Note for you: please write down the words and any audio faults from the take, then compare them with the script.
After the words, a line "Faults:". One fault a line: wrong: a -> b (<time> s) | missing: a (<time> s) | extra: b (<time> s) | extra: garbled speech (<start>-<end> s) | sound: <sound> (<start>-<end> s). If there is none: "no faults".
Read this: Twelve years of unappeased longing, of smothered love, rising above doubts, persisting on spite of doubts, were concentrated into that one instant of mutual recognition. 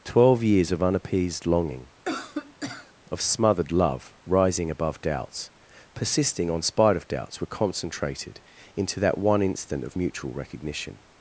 Twelve years of unappeased longing, of smothered love, rising above doubts, persisting on spite of doubts, were concentrated into that one instant of mutual recognition.
Faults:
sound: cough (2.0-2.9 s)